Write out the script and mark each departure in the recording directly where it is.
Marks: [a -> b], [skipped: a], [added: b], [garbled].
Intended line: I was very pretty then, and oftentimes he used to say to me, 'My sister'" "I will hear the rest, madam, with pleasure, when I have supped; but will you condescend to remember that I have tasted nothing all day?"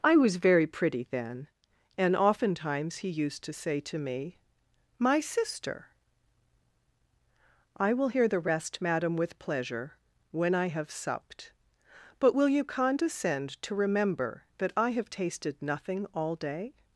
I was very pretty then, and oftentimes he used to say to me, 'My sister'" "I will hear the rest, madam, with pleasure, when I have supped; but will you condescend to remember that I have tasted nothing all day?"